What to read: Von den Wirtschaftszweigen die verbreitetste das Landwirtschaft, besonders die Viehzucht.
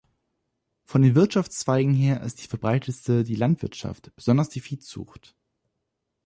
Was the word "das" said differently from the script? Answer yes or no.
yes